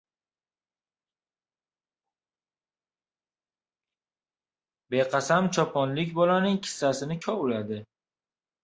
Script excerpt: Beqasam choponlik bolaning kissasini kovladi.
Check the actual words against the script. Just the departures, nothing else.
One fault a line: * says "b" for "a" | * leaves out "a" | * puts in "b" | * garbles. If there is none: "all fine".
all fine